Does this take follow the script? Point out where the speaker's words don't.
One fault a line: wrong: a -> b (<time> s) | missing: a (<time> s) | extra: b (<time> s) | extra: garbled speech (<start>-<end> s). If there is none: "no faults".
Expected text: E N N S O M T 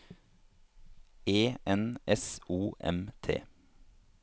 missing: N (2.0 s)